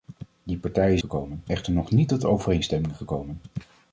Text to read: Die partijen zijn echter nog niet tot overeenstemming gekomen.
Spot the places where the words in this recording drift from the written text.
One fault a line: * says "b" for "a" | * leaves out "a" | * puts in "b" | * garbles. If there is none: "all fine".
* says "gekomen" for "zijn"